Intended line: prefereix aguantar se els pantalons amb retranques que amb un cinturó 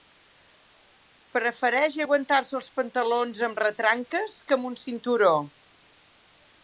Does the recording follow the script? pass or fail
pass